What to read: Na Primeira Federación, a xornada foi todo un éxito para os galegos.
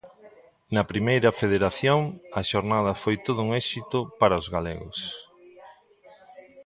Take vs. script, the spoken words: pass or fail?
pass